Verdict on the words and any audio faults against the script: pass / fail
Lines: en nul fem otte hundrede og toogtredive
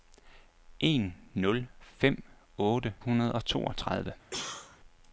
fail